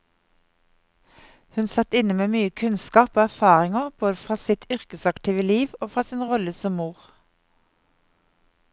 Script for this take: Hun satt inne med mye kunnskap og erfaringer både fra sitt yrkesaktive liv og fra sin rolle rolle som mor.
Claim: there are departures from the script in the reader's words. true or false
true